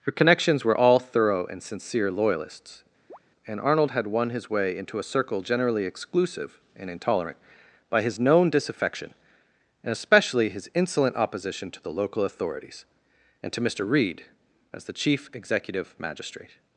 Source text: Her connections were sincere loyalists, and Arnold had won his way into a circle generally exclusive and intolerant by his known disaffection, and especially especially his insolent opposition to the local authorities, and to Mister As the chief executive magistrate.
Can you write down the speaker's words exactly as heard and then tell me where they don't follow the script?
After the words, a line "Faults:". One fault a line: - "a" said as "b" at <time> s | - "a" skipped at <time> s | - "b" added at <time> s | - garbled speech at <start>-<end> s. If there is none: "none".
Her connections were all thorough and sincere loyalists, and Arnold had won his way into a circle generally exclusive and intolerant by his known disaffection, and especially his insolent opposition to the local authorities, and to Mister Reed as the chief executive magistrate.
Faults:
- "all thorough and" added at 0.8 s
- "especially" skipped at 10.5 s
- "Reed" added at 13.8 s